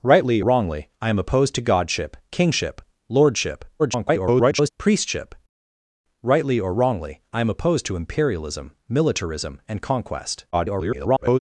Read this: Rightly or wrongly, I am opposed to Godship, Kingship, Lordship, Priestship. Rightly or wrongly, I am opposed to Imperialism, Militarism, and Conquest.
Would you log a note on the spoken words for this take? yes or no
yes